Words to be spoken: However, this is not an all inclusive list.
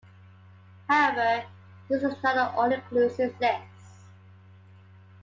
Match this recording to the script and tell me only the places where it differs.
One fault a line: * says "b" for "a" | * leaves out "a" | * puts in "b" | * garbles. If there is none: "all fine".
all fine